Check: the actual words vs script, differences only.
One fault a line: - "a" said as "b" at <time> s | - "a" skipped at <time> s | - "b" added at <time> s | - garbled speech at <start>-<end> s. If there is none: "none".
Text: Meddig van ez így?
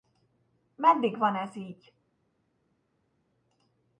none